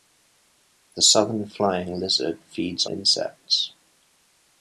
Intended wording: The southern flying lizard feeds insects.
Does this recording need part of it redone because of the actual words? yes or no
no